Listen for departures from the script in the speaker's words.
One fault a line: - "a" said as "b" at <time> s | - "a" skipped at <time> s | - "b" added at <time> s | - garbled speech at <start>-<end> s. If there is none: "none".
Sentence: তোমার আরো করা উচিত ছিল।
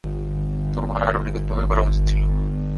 - "নিখুঁতভাবে" added at 1.2 s